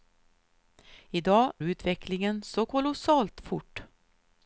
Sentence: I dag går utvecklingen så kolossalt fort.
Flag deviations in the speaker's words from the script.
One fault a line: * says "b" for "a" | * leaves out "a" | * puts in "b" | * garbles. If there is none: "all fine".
* leaves out "går"